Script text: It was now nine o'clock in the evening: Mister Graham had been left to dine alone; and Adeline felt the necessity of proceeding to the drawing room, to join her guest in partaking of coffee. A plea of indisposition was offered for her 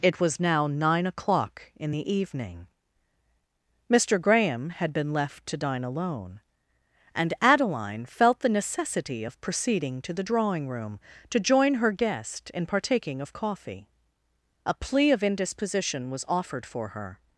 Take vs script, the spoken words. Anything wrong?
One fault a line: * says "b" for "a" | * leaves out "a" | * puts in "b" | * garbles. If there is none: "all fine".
all fine